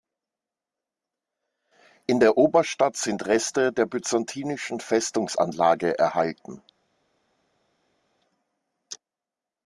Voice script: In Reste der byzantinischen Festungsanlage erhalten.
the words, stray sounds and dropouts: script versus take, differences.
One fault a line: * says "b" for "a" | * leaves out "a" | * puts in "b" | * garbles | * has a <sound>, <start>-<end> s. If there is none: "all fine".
* puts in "der Oberstadt sind"